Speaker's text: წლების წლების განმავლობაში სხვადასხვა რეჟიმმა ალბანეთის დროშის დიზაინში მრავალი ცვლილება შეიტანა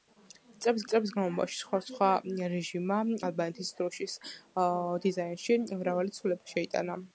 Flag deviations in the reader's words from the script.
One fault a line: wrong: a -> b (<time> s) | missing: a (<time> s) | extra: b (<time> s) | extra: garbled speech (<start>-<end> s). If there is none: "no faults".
no faults